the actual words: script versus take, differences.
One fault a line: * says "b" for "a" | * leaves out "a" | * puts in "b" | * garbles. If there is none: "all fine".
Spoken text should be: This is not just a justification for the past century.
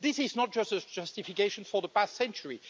all fine